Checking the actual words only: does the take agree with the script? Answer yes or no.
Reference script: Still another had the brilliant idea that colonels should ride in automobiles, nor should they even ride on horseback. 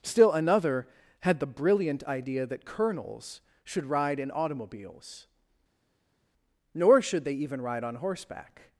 yes